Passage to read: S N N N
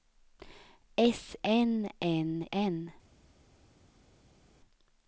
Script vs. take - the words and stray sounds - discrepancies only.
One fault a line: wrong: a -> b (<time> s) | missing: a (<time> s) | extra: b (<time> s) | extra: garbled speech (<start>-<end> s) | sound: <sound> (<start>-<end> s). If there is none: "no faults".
no faults